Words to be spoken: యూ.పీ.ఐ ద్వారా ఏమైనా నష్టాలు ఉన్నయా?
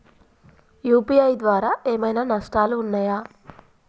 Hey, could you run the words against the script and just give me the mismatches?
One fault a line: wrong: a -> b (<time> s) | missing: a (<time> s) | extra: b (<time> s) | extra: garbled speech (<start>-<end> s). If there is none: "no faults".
no faults